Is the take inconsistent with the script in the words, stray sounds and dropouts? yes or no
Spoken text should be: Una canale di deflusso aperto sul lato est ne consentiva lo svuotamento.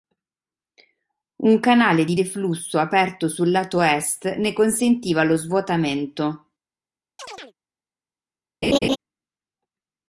yes